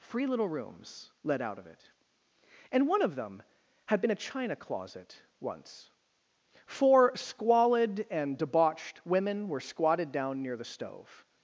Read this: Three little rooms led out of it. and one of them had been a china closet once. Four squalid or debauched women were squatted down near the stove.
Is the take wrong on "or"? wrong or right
wrong